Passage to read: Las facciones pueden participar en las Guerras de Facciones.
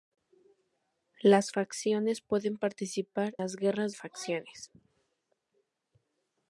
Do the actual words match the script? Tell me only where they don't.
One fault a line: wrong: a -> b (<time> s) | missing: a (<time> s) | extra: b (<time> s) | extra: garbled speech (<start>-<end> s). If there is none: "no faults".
missing: en (3.4 s)
missing: de (3.9 s)